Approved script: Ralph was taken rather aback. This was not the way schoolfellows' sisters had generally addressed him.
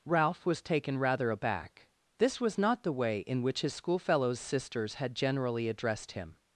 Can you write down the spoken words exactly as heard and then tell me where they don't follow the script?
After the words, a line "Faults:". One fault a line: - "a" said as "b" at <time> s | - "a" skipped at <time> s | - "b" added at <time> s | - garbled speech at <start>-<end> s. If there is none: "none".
Ralph was taken rather aback. This was not the way in which his schoolfellows' sisters had generally addressed him.
Faults:
- "in which his" added at 3.2 s